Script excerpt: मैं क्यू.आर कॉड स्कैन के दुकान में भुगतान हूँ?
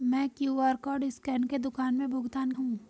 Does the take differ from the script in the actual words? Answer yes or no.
no